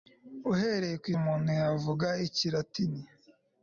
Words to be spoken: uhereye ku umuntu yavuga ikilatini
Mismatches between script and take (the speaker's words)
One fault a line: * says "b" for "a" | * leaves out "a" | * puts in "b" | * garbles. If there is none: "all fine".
all fine